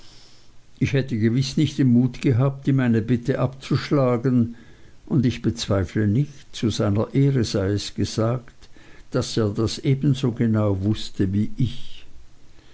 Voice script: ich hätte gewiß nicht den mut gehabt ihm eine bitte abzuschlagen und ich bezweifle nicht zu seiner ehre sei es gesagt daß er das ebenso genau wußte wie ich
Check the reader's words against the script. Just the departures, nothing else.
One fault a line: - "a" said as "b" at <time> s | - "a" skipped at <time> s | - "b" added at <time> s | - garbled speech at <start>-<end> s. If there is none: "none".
none